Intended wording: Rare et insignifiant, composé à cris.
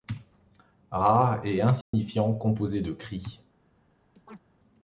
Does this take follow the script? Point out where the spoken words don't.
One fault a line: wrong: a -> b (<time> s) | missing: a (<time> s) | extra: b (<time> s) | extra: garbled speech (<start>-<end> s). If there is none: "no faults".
wrong: à -> de (2.8 s)